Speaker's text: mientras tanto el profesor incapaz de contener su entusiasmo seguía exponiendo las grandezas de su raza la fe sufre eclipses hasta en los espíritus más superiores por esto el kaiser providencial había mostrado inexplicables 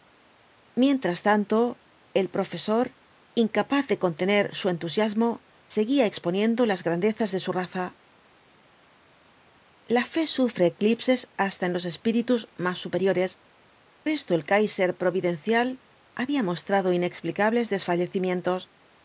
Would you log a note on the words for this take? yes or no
yes